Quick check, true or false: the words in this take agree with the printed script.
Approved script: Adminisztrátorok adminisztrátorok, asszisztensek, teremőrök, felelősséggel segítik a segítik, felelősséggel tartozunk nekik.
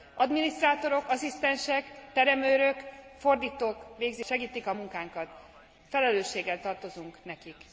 false